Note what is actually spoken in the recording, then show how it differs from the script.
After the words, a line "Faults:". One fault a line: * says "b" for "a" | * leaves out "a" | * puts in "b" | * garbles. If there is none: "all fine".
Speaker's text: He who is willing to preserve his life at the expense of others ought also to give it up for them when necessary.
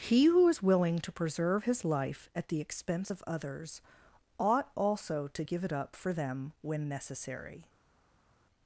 He who is willing to preserve his life at the expense of others ought also to give it up for them when necessary.
Faults:
all fine